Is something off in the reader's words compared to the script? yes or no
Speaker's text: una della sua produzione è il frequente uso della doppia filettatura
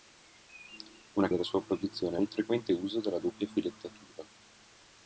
no